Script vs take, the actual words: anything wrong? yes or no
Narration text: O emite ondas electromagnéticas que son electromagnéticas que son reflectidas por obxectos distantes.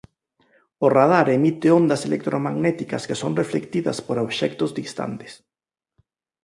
yes